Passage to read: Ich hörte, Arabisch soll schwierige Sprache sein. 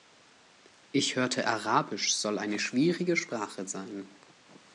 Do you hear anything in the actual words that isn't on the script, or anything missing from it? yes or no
yes